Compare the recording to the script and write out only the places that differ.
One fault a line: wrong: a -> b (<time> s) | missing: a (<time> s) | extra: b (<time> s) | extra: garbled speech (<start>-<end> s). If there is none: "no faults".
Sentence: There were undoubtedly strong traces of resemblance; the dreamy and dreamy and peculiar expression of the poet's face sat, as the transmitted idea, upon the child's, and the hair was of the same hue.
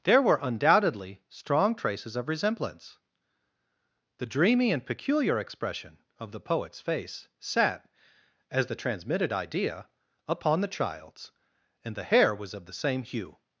missing: dreamy and (4.8 s)